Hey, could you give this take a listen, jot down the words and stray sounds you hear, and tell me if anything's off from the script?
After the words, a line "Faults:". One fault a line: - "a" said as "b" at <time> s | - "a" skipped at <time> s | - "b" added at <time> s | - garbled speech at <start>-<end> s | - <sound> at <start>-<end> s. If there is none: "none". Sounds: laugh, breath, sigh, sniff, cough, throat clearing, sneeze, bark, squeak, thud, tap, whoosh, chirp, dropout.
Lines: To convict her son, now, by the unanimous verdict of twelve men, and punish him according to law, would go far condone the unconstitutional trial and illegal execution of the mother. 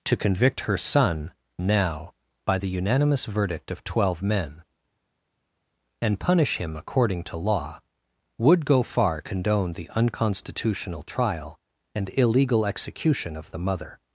To convict her son, now, by the unanimous verdict of twelve men, and punish him according to law, would go far condone the unconstitutional trial and illegal execution of the mother.
Faults:
none